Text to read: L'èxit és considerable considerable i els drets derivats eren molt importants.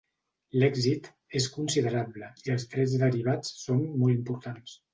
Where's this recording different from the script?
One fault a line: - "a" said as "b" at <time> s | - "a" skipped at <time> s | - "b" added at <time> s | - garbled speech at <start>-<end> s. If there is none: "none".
- "considerable" skipped at 2.3 s
- "eren" said as "són" at 3.7 s